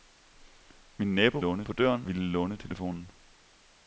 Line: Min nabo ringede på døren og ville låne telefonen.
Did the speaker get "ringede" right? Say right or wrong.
wrong